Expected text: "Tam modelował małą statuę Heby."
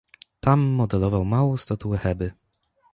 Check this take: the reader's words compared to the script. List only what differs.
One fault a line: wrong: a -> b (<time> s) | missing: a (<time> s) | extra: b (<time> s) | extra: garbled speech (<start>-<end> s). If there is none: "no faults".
no faults